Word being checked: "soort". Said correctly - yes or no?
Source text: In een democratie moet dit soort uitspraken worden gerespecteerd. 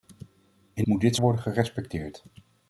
no